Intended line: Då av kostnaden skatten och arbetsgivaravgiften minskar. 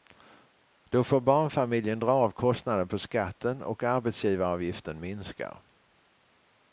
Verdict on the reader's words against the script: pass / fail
fail